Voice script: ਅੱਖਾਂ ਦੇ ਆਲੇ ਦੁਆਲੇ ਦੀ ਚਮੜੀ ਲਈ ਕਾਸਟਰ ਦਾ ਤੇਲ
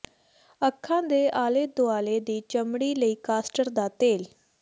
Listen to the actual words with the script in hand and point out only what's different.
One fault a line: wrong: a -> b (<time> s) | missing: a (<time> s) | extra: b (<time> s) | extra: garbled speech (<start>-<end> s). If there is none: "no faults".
no faults